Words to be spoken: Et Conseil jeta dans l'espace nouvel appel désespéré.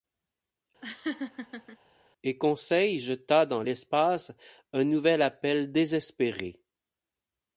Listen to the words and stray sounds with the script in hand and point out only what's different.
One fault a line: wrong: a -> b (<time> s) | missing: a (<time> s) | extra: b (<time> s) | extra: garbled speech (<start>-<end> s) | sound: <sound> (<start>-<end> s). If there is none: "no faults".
sound: laugh (0.8-1.8 s)
extra: un (4.7 s)